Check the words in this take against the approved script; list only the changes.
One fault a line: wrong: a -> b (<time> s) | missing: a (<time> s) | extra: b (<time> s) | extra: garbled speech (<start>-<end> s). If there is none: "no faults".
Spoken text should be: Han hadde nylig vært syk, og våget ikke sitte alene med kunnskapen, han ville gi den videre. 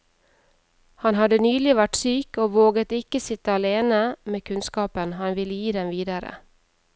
no faults